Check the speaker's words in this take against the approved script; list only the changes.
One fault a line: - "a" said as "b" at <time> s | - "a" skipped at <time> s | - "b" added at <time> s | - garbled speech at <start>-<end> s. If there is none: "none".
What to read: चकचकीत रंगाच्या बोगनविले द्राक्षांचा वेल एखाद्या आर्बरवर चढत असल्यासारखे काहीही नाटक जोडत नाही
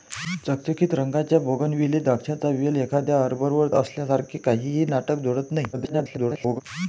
- "चढत" skipped at 3.7 s
- garbled speech at 5.7-6.6 s